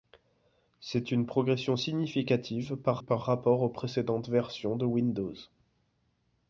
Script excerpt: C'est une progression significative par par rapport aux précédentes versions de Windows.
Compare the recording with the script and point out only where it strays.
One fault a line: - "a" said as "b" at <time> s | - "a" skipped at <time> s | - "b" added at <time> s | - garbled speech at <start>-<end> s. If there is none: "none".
none